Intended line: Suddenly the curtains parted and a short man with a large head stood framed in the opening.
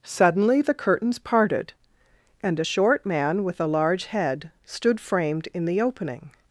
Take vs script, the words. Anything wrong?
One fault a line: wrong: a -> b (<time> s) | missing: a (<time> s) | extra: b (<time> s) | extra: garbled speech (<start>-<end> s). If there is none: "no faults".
no faults